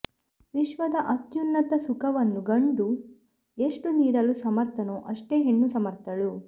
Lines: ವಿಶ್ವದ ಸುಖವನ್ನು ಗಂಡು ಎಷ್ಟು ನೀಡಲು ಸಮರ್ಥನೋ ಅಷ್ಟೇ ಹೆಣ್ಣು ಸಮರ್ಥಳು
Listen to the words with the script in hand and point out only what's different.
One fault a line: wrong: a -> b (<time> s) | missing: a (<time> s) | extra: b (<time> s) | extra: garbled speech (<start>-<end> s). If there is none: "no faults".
extra: ಅತ್ಯುನ್ನತ (1.1 s)